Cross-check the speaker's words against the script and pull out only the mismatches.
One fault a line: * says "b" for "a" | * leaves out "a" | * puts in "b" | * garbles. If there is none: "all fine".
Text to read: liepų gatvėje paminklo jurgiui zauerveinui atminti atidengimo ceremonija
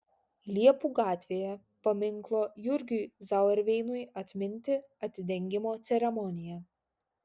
all fine